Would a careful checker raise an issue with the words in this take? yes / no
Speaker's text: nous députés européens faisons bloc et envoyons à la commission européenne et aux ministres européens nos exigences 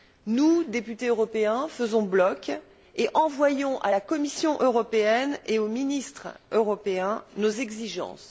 no